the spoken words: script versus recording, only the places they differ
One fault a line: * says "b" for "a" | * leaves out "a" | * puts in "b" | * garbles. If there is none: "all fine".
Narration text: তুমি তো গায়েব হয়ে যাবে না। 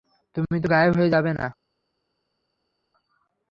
all fine